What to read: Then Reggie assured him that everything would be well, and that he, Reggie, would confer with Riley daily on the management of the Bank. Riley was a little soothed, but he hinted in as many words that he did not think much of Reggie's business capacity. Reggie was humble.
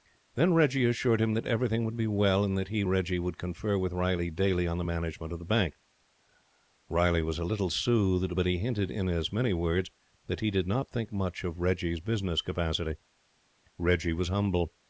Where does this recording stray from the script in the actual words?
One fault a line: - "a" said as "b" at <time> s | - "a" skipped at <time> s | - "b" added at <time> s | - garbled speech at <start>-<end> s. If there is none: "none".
none